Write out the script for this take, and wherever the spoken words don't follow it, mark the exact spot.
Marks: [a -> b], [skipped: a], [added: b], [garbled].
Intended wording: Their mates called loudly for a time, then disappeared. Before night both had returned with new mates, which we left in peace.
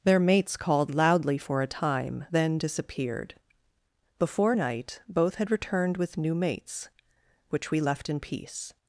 Their mates called loudly for a time, then disappeared. Before night both had returned with new mates, which we left in peace.